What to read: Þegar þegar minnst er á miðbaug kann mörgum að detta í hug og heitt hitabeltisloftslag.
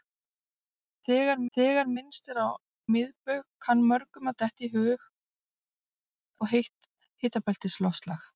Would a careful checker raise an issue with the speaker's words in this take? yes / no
no